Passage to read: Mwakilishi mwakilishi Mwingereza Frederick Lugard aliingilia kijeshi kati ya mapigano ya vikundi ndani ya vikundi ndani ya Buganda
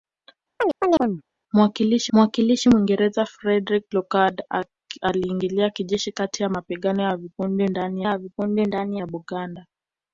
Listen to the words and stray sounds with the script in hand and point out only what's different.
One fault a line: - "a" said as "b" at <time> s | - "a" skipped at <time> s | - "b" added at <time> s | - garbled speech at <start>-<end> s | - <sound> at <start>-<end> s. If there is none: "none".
- chirp at 0.6-1.2 s